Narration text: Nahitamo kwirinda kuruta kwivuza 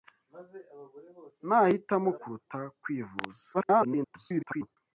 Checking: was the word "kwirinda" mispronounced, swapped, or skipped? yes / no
yes